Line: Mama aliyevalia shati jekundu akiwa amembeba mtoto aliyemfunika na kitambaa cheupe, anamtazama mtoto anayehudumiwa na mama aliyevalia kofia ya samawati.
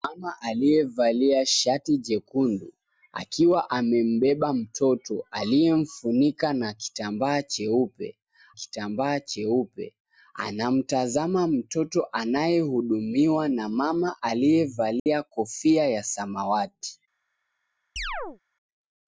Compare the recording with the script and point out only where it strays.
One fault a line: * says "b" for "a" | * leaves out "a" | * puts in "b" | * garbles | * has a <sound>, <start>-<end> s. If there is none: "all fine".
* puts in "kitambaa cheupe"
* has a dropout, 15.0-15.1 s
* has a chirp, 18.0-18.4 s